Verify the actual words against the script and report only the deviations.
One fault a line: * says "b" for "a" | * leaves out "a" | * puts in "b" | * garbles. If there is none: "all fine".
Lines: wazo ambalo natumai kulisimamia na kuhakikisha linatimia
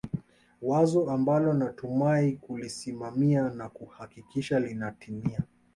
all fine